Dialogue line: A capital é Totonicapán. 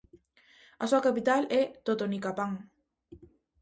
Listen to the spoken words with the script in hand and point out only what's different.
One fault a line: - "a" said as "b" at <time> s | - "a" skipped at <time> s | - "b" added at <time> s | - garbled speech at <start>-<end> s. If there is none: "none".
- "súa" added at 0.9 s